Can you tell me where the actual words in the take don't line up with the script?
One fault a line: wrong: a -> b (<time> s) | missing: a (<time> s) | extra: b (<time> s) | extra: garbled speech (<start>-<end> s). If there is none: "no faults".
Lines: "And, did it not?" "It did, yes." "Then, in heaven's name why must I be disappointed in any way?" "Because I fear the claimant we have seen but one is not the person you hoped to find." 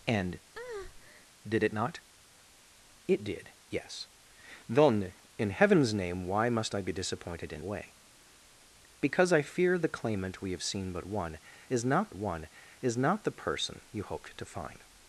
missing: any (7.6 s)
extra: one is not (12.1 s)